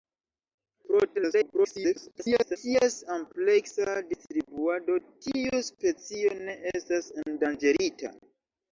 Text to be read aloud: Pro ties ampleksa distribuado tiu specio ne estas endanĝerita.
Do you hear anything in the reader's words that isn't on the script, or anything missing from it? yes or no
yes